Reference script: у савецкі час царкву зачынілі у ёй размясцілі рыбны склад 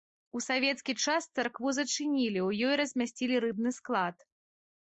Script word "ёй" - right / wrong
right